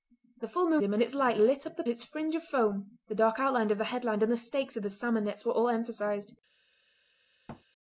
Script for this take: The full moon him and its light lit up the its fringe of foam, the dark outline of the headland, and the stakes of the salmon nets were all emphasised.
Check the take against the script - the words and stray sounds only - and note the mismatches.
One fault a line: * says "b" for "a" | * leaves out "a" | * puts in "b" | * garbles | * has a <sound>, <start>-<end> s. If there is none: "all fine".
* has a thud, 7.5-7.6 s